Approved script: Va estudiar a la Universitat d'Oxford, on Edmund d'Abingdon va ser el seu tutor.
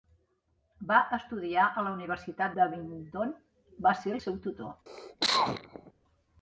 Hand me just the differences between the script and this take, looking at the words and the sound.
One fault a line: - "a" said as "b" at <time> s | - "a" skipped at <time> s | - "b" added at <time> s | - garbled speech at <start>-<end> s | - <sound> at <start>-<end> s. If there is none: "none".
- "d'Oxford on Edmund" skipped at 2.5 s
- cough at 4.9-5.9 s